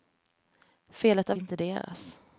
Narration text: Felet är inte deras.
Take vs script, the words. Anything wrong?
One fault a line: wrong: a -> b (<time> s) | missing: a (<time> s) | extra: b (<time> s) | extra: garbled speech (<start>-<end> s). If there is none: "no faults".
no faults